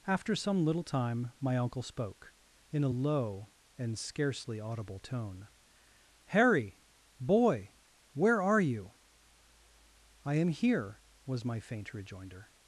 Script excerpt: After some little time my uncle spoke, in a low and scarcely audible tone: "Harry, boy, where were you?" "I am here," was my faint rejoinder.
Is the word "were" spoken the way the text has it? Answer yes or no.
no